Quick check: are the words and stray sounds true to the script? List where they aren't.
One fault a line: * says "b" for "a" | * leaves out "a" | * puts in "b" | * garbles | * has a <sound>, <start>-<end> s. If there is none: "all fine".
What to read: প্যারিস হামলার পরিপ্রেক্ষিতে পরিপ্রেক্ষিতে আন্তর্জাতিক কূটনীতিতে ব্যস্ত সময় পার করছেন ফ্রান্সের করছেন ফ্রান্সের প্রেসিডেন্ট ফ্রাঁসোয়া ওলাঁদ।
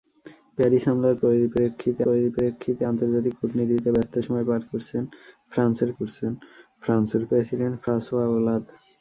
all fine